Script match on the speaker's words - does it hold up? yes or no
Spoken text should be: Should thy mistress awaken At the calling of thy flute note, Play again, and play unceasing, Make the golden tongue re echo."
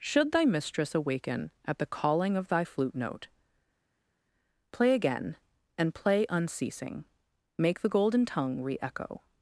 yes